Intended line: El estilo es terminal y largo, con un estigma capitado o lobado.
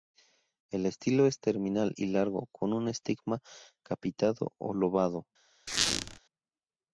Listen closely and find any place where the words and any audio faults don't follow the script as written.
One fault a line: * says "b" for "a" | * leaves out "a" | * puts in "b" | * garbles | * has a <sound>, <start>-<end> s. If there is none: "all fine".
* has a squeak, 5.7-6.2 s